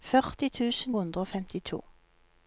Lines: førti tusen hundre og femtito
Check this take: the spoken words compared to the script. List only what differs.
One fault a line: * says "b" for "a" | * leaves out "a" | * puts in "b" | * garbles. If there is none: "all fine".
all fine